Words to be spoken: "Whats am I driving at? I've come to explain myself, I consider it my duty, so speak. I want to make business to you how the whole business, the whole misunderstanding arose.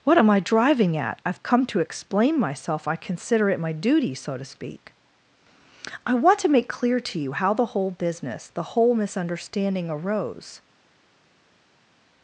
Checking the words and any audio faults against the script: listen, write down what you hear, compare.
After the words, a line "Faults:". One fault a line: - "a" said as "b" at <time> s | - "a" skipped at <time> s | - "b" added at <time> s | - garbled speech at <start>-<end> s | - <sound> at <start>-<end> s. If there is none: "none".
"What am I driving at? I've come to explain myself, I consider it my duty, so to speak. I want to make clear to you how the whole business, the whole misunderstanding arose.
Faults:
- "Whats" said as "What" at 0.0 s
- "to" added at 4.3 s
- "business" said as "clear" at 6.7 s